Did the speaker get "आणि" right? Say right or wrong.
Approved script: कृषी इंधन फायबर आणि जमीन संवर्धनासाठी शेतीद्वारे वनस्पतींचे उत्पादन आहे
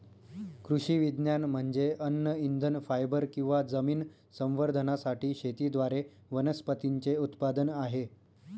wrong